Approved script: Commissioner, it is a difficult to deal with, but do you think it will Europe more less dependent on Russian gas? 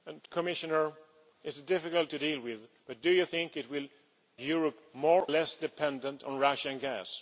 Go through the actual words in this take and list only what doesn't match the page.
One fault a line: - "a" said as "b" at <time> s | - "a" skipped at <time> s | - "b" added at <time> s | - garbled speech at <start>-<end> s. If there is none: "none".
none